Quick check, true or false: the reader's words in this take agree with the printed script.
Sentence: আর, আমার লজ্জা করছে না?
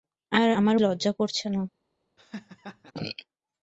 true